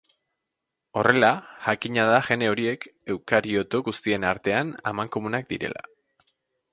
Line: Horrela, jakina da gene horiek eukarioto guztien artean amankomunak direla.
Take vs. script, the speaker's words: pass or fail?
pass